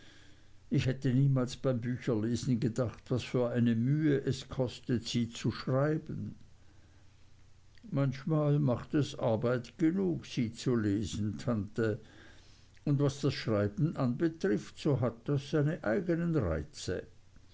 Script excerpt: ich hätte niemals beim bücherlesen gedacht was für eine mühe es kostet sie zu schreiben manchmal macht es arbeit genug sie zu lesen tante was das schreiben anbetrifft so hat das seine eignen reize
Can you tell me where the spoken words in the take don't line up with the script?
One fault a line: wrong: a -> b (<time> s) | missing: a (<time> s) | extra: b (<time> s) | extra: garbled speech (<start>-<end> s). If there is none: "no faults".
extra: und (12.8 s)